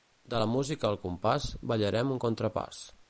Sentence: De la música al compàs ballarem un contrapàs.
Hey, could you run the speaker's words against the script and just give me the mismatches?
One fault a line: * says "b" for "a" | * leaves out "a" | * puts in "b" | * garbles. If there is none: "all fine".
all fine